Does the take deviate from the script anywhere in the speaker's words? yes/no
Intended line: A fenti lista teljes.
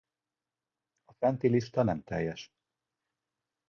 yes